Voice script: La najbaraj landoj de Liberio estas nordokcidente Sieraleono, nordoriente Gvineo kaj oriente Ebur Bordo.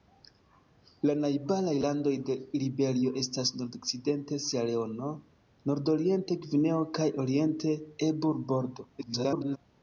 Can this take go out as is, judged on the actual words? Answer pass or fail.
fail